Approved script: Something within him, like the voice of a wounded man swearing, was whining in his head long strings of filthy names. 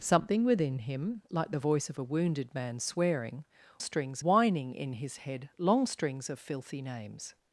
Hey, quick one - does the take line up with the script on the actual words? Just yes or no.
no